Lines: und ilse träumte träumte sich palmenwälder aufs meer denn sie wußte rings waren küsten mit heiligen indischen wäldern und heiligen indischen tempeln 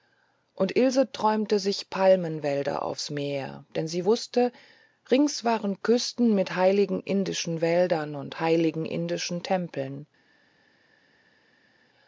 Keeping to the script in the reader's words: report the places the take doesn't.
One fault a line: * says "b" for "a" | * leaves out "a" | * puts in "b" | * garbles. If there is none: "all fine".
* leaves out "träumte"